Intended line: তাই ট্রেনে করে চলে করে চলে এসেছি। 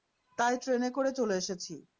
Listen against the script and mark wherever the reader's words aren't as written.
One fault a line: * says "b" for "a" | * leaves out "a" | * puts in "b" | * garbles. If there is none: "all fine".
* leaves out "করে চলে"